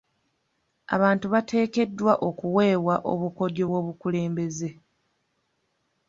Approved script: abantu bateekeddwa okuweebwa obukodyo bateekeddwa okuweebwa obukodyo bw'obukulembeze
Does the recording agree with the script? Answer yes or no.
no